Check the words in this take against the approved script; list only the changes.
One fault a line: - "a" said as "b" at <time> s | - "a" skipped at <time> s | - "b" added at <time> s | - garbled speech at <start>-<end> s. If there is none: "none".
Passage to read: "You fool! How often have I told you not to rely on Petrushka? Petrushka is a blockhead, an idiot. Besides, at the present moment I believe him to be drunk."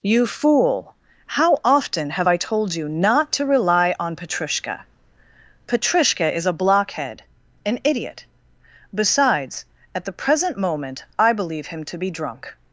none